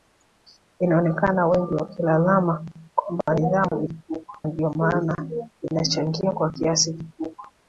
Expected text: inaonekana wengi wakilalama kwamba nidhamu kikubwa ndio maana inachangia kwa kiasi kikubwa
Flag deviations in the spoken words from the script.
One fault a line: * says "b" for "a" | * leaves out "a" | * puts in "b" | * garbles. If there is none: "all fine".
all fine